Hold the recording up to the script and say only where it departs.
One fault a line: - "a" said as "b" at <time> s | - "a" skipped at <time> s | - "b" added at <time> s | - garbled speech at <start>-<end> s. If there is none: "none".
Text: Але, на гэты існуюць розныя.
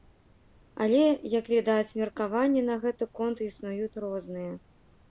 - "як відаць меркаванні" added at 1.4 s
- "конт" added at 3.2 s